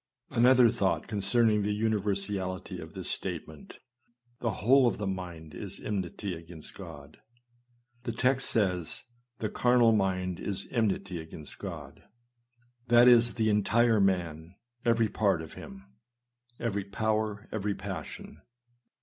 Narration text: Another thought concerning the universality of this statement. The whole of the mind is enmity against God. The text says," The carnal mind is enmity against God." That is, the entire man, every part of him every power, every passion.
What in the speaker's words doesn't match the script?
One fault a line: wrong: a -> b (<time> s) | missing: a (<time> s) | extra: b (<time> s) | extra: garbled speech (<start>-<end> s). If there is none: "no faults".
no faults